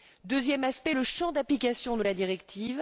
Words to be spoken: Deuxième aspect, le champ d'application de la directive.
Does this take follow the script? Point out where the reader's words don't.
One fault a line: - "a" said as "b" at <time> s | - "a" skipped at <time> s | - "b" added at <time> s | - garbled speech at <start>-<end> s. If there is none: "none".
none